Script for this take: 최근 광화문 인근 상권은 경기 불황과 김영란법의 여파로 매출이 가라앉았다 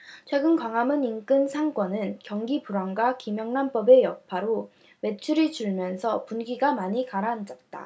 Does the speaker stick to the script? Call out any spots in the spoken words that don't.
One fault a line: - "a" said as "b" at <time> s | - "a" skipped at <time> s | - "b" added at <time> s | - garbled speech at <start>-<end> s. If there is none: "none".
- "줄면서 분위기가 많이" added at 5.5 s